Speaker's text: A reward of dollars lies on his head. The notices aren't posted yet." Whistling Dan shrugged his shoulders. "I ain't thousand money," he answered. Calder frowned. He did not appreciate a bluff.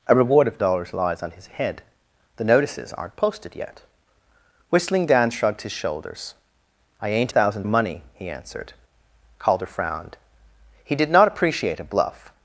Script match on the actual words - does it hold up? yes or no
yes